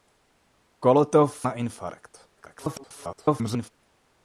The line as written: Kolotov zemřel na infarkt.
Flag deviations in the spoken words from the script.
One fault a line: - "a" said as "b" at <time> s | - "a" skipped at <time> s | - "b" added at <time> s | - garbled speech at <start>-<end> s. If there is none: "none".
- "zemřel" skipped at 1.5 s
- garbled speech at 2.4-3.7 s